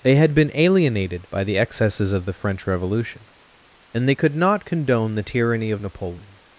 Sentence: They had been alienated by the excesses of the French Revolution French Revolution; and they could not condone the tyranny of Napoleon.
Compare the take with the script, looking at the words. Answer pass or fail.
fail